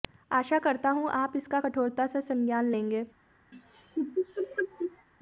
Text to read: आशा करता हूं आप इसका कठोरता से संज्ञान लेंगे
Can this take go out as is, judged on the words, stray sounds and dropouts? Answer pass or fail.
fail